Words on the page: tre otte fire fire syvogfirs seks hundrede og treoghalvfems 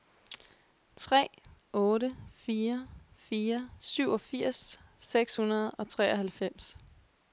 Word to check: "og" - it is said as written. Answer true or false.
true